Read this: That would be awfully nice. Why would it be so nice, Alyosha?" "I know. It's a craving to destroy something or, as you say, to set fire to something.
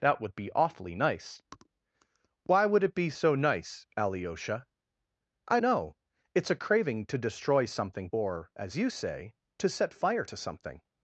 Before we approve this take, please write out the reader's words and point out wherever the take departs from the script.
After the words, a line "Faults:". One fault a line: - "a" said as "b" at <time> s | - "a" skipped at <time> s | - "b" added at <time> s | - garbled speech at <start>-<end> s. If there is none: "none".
That would be awfully nice. Why would it be so nice, Alyosha?" "I know. It's a craving to destroy something or, as you say, to set fire to something.
Faults:
none